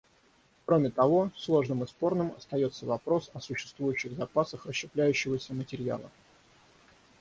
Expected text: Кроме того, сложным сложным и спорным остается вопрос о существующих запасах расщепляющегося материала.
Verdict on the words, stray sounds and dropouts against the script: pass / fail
fail